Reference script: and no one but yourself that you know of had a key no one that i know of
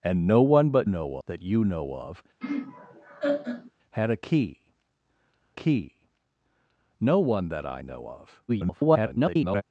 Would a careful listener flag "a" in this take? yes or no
no